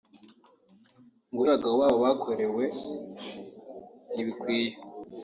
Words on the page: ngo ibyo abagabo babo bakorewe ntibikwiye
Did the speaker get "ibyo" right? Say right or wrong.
wrong